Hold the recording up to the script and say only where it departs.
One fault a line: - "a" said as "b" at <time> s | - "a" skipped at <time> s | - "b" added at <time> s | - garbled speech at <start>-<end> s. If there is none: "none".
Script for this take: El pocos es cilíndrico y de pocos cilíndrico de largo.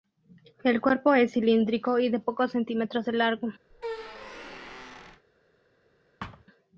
- "pocos" said as "cuerpo" at 0.8 s
- "cilíndrico" said as "centímetros" at 2.5 s